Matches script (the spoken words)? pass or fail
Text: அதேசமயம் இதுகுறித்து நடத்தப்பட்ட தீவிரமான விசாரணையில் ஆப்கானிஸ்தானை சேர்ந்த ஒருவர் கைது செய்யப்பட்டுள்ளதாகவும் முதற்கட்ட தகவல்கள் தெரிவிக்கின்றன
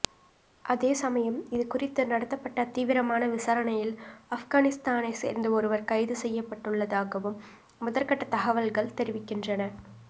pass